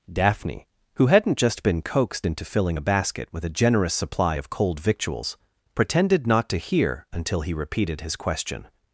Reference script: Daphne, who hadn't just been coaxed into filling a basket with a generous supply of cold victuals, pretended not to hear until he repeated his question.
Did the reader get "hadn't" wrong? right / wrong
right